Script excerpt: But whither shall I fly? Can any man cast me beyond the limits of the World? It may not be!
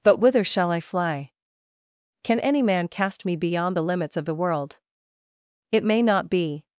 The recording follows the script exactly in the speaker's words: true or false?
true